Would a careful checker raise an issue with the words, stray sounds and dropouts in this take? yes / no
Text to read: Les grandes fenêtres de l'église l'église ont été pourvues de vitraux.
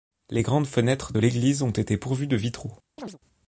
yes